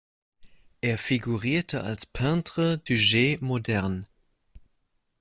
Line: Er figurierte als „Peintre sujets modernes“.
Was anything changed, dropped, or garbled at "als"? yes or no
no